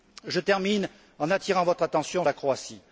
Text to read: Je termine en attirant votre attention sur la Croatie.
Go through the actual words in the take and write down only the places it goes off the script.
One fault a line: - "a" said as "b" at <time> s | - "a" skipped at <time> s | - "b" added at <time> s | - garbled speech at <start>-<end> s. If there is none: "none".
- "sur" skipped at 2.2 s